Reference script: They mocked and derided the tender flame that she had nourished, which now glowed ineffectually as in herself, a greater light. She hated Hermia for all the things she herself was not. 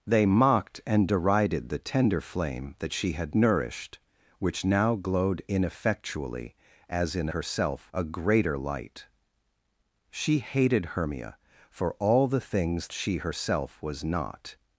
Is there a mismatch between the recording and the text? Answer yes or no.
no